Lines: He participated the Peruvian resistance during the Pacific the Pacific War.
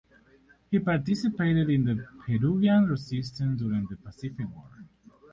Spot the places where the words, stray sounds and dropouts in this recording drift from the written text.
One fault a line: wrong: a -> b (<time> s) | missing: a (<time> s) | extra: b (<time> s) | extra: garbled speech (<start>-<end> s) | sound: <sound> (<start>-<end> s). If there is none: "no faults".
extra: in (1.7 s)
missing: the Pacific (4.5 s)